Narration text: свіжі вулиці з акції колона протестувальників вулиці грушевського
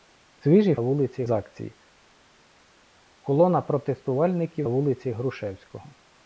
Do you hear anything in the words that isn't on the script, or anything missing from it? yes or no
no